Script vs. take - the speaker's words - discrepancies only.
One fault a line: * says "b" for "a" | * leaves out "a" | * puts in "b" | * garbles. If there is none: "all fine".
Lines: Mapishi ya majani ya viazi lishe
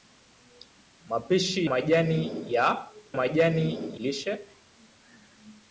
* leaves out "ya"
* says "majani" for "viazi"